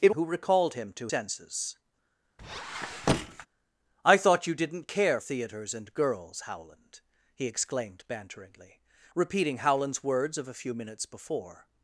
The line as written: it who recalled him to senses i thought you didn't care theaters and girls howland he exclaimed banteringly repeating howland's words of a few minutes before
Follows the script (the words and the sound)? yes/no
no